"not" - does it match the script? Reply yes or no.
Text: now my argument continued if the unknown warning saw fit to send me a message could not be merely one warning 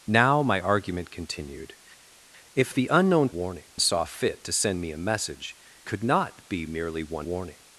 yes